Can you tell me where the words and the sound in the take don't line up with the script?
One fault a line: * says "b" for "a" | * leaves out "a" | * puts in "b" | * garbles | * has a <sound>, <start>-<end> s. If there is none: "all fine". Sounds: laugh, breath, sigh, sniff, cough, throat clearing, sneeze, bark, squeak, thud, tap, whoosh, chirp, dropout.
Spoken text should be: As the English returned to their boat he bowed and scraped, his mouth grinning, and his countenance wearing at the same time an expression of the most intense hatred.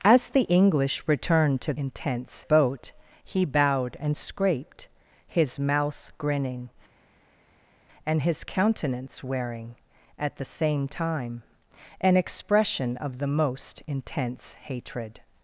* says "intense" for "their"